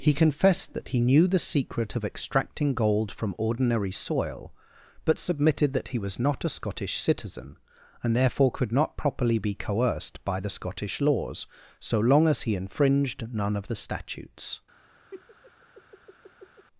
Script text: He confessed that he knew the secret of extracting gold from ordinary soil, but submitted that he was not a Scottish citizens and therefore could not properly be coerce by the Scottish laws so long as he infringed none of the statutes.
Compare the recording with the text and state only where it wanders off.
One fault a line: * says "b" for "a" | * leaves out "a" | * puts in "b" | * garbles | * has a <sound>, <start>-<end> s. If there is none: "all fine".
* says "citizen" for "citizens"
* says "coerced" for "coerce"
* has a laugh, 15.1-16.7 s